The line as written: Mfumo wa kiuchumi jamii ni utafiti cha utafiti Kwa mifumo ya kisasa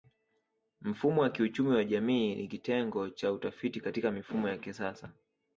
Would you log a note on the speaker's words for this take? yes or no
yes